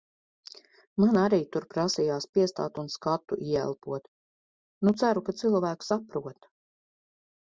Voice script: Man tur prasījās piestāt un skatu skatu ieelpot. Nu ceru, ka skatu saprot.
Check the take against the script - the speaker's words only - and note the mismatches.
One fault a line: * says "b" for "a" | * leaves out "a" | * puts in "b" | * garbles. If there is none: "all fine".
* puts in "arī"
* leaves out "skatu"
* says "cilvēki" for "skatu"